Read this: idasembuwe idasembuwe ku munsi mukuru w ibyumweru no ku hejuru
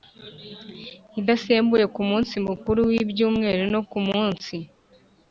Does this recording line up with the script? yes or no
no